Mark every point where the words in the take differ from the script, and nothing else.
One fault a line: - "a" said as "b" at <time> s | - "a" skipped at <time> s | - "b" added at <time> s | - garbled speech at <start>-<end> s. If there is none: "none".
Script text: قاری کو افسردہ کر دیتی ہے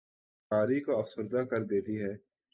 none